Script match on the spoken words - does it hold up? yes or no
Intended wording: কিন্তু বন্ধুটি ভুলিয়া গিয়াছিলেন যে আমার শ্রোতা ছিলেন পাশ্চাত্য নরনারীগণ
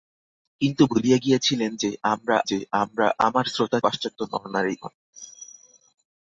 no